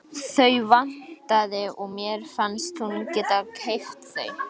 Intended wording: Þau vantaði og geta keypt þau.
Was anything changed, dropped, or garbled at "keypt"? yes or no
no